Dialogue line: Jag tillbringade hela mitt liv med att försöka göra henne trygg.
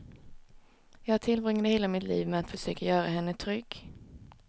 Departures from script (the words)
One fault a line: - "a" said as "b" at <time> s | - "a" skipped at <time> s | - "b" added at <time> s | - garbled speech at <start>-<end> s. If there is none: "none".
none